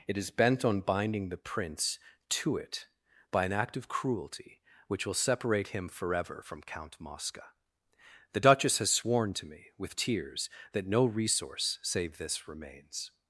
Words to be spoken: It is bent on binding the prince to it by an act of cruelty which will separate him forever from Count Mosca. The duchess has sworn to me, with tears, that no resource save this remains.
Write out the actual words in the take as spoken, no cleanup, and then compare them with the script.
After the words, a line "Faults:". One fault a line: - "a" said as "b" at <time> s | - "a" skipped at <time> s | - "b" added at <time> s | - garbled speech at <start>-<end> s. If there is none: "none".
It is bent on binding the prince to it by an act of cruelty which will separate him forever from Count Mosca. The duchess has sworn to me, with tears, that no resource save this remains.
Faults:
none